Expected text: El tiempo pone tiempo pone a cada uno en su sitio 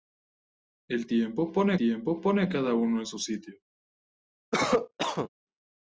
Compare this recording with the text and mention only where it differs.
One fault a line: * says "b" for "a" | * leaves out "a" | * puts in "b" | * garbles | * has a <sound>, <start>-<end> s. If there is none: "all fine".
* has a cough, 4.5-5.3 s